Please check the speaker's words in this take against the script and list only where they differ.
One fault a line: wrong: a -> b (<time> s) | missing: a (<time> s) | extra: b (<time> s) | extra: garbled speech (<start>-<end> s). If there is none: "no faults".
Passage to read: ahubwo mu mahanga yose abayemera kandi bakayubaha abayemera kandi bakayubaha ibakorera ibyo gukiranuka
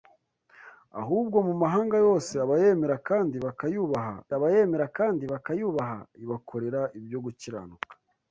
no faults